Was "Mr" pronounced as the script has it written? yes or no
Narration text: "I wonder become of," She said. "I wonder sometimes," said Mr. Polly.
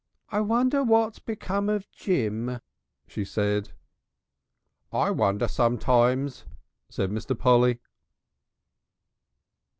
yes